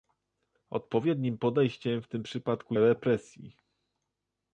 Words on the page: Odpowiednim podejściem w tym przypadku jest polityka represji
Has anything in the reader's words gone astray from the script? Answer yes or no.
yes